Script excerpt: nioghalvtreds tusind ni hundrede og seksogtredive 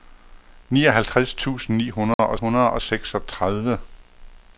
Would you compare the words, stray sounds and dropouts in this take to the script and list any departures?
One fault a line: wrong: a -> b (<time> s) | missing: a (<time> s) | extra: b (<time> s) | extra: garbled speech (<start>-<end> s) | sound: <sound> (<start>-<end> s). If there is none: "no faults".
sound: dropout (2.1-2.2 s)
extra: hundrede og (2.3 s)